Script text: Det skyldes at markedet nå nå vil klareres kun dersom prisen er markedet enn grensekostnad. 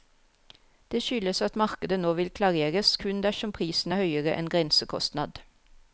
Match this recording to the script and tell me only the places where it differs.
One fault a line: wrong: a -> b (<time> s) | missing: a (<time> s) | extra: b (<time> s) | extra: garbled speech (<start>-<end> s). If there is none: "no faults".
missing: nå (2.1 s)
wrong: markedet -> høyere (4.0 s)